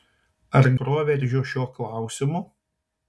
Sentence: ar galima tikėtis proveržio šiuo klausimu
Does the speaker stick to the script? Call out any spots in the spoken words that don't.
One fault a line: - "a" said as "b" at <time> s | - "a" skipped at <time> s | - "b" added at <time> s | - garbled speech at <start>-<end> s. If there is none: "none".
- "galima tikėtis" skipped at 0.7 s